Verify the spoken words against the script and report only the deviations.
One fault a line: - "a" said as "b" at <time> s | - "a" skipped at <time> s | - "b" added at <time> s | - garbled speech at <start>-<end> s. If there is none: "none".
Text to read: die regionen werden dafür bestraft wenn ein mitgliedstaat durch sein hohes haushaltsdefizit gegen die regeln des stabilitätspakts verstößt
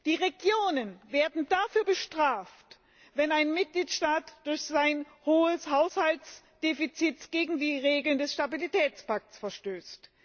none